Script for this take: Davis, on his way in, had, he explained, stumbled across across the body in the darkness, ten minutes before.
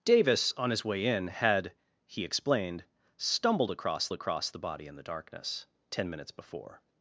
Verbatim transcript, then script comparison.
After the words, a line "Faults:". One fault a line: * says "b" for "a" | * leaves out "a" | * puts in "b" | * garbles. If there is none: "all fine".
Davis, on his way in, had, he explained, stumbled across across the body in the darkness, ten minutes before.
Faults:
all fine